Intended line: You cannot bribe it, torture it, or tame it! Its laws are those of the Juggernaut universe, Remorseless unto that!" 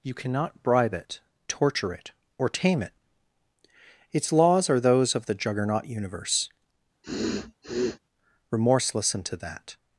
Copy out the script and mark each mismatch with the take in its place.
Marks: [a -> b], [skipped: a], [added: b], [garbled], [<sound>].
You cannot bribe it, torture it, or tame it! Its laws are those of the Juggernaut universe, [sniff] Remorseless unto that!"